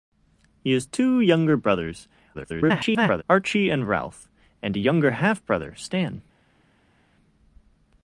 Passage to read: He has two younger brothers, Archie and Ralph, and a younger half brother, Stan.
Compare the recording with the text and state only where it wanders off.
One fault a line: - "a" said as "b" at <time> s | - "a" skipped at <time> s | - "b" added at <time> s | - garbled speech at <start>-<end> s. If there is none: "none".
- garbled speech at 2.3-3.2 s